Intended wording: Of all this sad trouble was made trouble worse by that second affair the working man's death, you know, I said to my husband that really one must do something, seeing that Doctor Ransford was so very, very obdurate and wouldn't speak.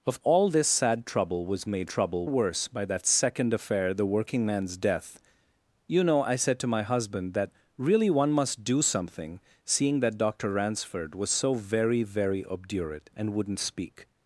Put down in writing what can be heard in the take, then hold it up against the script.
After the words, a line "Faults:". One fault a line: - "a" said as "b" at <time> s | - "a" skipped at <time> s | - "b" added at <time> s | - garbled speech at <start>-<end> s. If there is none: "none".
Of all this sad trouble was made trouble worse by that second affair the working man's death, you know, I said to my husband that really one must do something, seeing that Doctor Ransford was so very, very obdurate and wouldn't speak.
Faults:
none